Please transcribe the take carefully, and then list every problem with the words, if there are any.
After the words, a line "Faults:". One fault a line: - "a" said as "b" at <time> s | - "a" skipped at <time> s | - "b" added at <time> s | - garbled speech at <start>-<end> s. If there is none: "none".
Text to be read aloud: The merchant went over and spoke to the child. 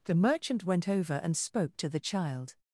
The merchant went over and spoke to the child.
Faults:
none